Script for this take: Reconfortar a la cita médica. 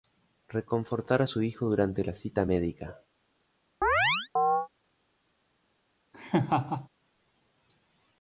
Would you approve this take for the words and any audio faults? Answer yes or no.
no